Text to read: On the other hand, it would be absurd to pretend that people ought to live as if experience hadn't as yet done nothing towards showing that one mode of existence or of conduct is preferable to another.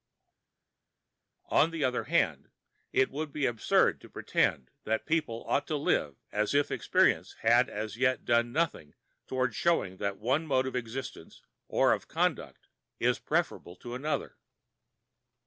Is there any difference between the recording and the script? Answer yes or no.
yes